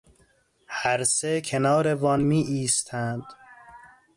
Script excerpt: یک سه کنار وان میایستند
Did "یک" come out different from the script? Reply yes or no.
yes